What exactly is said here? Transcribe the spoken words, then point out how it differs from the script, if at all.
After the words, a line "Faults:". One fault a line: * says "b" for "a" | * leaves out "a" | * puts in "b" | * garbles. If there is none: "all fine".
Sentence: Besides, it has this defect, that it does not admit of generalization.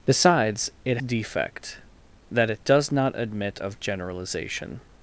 Besides, it defect, that it does not admit of generalization.
Faults:
* leaves out "has this"